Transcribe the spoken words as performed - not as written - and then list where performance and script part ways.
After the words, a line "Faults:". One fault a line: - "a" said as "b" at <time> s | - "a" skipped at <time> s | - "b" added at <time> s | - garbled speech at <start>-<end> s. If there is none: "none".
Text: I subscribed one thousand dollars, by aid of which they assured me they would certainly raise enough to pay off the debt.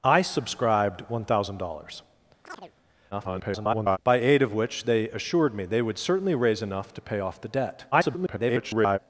I subscribed one thousand dollars, [garbled] by aid of which they assured me they would certainly raise enough to pay off the debt. [garbled]
Faults:
- garbled speech at 3.1-4.0 s
- garbled speech at 7.9-9.0 s